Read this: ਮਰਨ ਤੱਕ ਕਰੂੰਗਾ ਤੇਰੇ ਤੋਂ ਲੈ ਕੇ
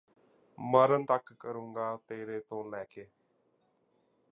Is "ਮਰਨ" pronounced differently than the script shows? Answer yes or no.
no